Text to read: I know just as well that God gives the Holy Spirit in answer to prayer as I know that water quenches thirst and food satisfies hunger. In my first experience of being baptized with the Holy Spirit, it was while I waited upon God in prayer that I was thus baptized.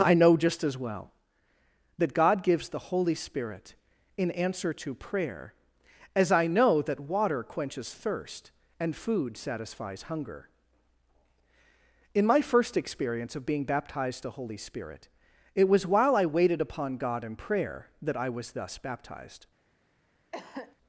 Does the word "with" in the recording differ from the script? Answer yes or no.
yes